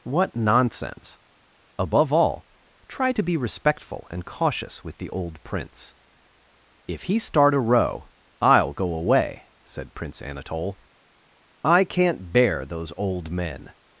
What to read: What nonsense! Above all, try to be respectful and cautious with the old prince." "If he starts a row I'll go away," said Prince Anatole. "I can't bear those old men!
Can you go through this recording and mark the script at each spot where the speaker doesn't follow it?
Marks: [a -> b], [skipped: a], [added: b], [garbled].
What nonsense! Above all, try to be respectful and cautious with the old prince." "If he [starts -> start] a row I'll go away," said Prince Anatole. "I can't bear those old men!